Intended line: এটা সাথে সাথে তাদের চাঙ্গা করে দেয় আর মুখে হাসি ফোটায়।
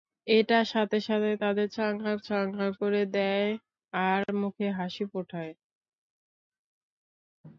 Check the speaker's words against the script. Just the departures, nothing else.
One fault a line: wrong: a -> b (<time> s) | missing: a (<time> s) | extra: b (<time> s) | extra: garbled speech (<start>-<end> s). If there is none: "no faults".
extra: চাঙ্গা (2.3 s)